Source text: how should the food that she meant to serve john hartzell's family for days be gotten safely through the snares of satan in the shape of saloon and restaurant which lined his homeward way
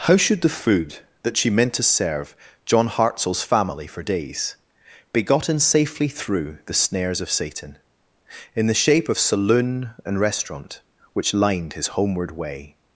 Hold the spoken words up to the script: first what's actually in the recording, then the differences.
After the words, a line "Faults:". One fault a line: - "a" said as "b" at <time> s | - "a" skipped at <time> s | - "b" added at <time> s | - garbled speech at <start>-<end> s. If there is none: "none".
how should the food that she meant to serve john hartzell's family for days be gotten safely through the snares of satan in the shape of saloon and restaurant which lined his homeward way
Faults:
none